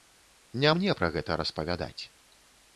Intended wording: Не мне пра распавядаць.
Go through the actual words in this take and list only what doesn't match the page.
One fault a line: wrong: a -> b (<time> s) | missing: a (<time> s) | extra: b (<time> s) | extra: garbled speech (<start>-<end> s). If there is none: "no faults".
extra: гэта (1.2 s)